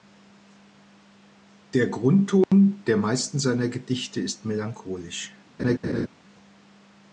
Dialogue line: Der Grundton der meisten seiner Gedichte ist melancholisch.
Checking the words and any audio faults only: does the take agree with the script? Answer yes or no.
no